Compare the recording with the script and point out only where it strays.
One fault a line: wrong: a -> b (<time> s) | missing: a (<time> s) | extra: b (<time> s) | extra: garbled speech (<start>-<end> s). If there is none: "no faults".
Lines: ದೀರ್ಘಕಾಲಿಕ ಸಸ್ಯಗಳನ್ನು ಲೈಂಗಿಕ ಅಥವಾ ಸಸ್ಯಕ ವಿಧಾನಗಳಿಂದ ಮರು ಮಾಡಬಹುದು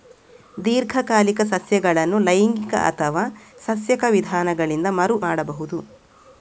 no faults